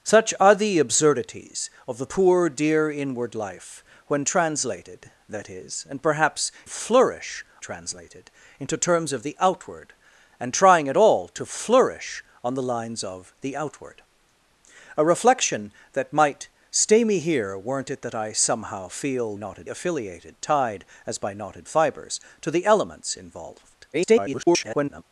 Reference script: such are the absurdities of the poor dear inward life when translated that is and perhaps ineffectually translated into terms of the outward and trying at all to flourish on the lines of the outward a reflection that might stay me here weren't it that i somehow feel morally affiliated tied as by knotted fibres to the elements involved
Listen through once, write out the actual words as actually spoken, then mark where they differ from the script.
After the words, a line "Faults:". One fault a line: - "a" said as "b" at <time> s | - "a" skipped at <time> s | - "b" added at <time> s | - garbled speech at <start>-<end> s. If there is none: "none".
such are the absurdities of the poor dear inward life when translated that is and perhaps flourish translated into terms of the outward and trying at all to flourish on the lines of the outward a reflection that might stay me here weren't it that i somehow feel knotted affiliated tied as by knotted fibres to the elements involved [garbled]
Faults:
- "ineffectually" said as "flourish" at 6.7 s
- "morally" said as "knotted" at 19.4 s
- garbled speech at 23.9-25.0 s